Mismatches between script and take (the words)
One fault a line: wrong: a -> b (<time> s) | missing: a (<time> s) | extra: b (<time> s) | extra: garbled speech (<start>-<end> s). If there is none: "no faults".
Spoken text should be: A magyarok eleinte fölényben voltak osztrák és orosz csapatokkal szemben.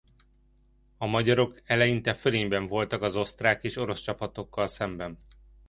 extra: az (3.0 s)